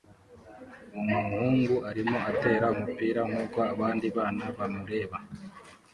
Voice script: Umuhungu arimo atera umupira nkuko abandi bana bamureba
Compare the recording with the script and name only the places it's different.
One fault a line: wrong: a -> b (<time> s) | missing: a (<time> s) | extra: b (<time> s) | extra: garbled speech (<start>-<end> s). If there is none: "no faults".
no faults